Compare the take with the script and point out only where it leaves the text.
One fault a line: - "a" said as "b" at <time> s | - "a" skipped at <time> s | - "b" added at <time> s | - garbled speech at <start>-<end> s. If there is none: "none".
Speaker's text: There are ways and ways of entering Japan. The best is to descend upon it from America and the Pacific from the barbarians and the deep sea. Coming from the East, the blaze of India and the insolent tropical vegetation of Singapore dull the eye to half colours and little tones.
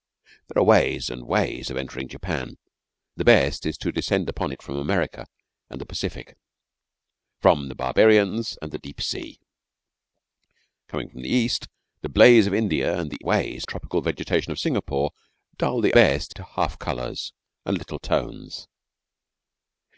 - "insolent" said as "ways" at 13.2 s
- "eye" said as "best" at 15.9 s